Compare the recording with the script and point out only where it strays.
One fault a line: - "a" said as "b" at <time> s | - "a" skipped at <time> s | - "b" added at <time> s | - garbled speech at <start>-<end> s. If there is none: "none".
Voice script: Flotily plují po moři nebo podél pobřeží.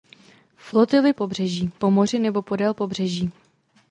- "plují" said as "pobřeží" at 1.1 s